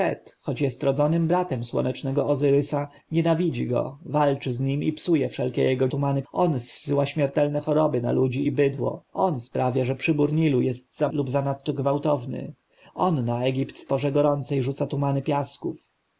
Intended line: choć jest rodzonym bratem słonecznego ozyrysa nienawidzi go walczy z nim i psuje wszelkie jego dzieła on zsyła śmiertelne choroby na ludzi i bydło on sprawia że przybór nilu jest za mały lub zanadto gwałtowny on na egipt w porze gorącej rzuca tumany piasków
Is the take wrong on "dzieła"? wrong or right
wrong